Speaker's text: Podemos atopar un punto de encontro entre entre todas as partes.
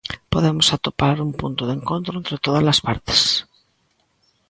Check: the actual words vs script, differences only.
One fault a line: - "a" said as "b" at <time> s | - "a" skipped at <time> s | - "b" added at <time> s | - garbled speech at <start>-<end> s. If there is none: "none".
- "entre" skipped at 2.4 s